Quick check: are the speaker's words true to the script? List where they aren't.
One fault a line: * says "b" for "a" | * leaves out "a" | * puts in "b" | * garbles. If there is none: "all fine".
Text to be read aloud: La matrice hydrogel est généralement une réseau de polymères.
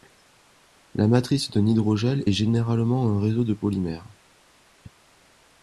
* puts in "d'un"
* says "un" for "une"